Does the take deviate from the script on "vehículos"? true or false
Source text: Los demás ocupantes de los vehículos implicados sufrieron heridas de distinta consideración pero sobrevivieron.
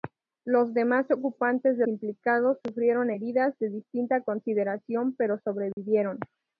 true